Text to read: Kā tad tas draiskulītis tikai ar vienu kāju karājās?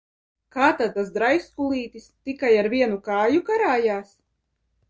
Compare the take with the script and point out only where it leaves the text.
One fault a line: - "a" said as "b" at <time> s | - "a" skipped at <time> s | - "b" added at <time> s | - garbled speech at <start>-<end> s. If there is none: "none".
none